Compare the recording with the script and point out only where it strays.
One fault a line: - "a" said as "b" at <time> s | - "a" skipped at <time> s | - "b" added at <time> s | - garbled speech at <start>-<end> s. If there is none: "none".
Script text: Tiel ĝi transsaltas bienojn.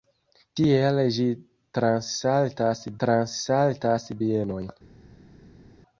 - "transsaltas" added at 3.0 s